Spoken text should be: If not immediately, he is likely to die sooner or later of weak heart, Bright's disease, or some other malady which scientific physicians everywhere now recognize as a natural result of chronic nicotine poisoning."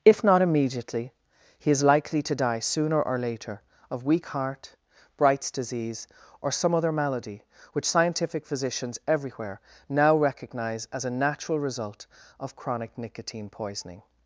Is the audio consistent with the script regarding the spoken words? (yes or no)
yes